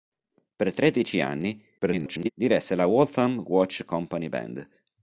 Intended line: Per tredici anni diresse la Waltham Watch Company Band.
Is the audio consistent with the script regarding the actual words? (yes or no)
no